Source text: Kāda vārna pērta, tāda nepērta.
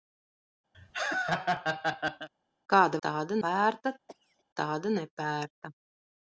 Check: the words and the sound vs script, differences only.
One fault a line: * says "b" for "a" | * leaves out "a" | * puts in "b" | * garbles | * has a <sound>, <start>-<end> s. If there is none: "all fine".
* has a laugh, 0.7-2.3 s
* says "tāda" for "vārna"
* has a cough, 4.1-4.4 s